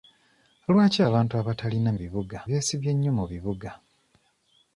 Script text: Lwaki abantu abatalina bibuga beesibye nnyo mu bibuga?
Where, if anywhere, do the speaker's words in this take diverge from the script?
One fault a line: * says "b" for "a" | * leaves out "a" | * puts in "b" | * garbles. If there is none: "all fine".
all fine